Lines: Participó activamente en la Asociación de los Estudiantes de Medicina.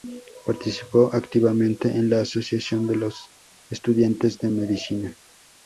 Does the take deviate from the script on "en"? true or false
false